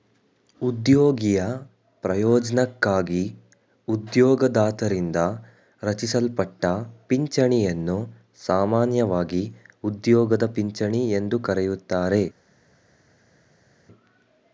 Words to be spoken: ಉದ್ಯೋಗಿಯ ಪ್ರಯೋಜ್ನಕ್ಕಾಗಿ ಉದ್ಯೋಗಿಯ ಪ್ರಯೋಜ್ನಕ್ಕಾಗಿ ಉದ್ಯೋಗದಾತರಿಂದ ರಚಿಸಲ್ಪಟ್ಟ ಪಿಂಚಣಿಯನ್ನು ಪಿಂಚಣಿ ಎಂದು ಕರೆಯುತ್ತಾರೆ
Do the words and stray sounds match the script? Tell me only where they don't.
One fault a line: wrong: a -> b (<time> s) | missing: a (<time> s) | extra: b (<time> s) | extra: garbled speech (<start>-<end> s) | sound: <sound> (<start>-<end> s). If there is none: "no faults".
missing: ಉದ್ಯೋಗಿಯ ಪ್ರಯೋಜ್ನಕ್ಕಾಗಿ (3.2 s)
extra: ಸಾಮಾನ್ಯವಾಗಿ ಉದ್ಯೋಗದ (8.5 s)